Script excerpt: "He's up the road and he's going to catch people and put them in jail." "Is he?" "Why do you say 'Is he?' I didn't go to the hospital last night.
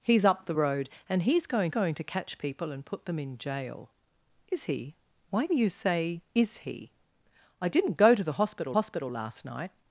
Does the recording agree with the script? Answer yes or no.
no